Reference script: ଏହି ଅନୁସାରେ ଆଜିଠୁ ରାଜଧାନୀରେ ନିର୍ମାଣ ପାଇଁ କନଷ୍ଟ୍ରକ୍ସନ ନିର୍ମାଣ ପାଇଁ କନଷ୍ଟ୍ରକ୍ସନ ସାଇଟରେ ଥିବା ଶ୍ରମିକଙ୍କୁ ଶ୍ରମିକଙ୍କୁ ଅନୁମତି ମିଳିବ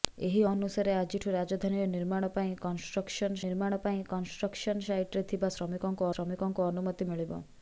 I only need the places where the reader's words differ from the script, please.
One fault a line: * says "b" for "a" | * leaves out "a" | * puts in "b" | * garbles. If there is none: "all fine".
all fine